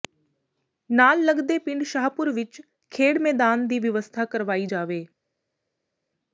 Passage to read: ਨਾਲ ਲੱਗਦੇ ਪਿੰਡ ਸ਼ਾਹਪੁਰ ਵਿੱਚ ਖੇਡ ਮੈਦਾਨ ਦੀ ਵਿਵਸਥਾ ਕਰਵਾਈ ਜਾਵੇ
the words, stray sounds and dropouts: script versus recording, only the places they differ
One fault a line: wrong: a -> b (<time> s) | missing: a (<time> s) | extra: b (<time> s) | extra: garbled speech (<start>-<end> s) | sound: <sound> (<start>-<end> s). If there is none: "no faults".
no faults